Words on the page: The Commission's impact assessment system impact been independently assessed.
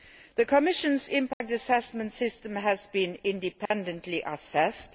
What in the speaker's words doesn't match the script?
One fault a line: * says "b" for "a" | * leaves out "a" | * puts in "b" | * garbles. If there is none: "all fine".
* says "has" for "impact"